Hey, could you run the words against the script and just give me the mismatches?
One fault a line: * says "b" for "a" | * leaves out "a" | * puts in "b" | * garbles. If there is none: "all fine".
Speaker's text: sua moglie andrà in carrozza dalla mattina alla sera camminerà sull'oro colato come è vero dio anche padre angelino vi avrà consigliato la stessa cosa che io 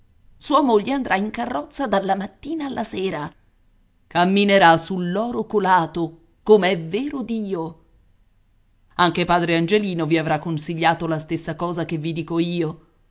* puts in "vi dico"